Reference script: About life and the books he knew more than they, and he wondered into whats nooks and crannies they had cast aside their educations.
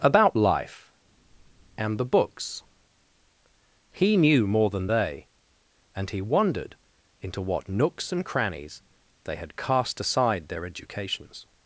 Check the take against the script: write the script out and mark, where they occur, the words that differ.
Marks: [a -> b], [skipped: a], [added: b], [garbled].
About life and the books he knew more than they, and he wondered into [whats -> what] nooks and crannies they had cast aside their educations.